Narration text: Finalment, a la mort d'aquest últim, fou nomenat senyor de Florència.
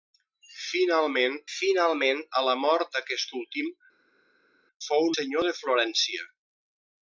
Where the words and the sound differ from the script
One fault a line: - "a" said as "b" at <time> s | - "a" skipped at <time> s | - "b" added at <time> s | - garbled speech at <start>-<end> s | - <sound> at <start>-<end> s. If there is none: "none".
- "finalment" added at 1.6 s
- "nomenat" skipped at 5.1 s